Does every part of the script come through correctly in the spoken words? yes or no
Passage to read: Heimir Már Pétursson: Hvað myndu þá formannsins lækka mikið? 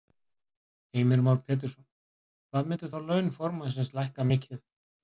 no